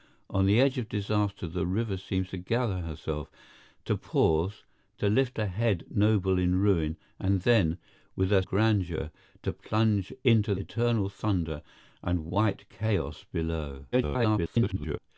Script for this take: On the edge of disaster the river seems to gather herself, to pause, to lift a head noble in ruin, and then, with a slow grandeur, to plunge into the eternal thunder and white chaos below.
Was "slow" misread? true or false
true